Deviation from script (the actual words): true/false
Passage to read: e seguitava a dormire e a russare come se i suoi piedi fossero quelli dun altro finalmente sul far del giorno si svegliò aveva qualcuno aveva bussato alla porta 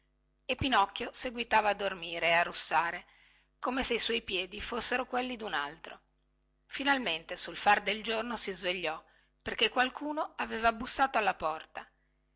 true